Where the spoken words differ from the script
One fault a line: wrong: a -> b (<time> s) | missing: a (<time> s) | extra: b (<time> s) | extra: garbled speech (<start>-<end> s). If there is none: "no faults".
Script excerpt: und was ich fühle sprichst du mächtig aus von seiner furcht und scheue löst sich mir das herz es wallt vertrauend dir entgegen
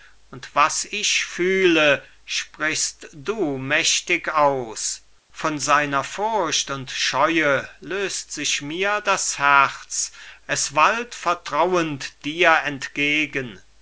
no faults